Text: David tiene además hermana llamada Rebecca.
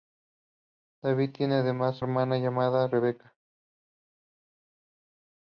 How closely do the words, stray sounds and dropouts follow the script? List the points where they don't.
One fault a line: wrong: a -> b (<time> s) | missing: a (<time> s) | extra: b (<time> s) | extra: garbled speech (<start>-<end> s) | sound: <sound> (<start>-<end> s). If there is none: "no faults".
no faults